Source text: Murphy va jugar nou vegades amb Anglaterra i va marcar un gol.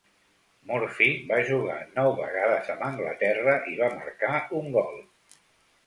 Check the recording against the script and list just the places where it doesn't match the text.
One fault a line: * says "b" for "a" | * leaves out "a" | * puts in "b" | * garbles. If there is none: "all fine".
all fine